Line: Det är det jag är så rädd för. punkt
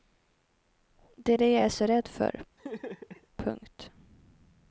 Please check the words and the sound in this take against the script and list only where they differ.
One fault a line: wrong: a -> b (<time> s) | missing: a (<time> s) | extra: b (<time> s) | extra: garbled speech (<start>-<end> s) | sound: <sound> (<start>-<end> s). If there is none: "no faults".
sound: laugh (2.6-3.3 s)